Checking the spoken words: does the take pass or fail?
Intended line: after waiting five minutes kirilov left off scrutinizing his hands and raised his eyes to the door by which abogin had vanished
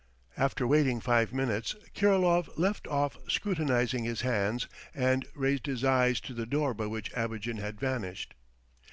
pass